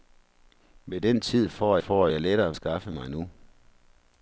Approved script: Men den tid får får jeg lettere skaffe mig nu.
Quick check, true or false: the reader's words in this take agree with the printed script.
true